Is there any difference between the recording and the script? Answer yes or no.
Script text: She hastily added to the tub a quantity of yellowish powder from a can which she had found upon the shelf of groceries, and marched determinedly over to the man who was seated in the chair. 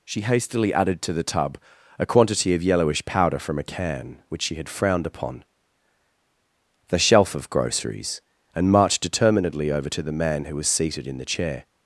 yes